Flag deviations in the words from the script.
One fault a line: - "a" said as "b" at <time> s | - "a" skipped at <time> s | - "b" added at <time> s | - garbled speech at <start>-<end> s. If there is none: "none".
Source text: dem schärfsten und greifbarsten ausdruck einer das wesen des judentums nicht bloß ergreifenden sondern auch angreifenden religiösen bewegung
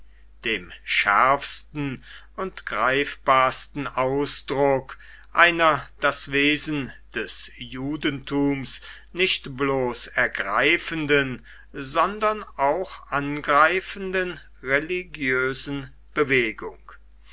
none